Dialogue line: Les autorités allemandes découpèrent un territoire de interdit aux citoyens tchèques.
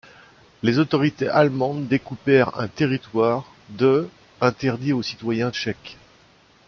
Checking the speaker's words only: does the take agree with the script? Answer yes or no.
yes